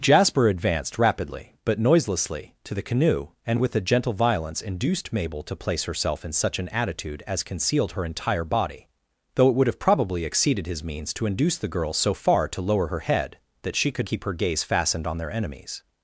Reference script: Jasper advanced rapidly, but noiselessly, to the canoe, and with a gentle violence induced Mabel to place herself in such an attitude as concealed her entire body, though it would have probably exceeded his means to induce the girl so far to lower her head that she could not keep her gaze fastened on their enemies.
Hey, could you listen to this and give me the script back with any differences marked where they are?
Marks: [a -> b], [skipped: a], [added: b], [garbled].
Jasper advanced rapidly, but noiselessly, to the canoe, and with a gentle violence induced Mabel to place herself in such an attitude as concealed her entire body, though it would have probably exceeded his means to induce the girl so far to lower her head that she could [skipped: not] keep her gaze fastened on their enemies.